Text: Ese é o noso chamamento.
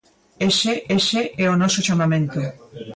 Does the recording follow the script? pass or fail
fail